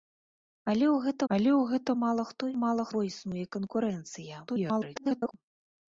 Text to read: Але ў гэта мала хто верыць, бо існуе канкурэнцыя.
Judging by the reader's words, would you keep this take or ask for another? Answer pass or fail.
fail